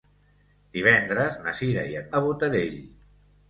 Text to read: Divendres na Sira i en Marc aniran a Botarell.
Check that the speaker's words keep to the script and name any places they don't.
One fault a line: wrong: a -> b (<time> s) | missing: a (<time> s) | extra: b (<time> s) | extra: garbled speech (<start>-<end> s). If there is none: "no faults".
missing: Marc aniran (2.1 s)